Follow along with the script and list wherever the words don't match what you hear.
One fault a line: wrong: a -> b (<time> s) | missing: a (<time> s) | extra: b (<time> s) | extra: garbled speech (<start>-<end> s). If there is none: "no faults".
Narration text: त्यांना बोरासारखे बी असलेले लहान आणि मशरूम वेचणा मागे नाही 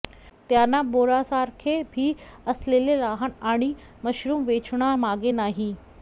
no faults